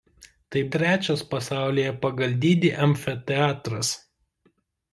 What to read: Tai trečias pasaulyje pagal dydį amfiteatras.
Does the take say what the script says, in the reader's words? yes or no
yes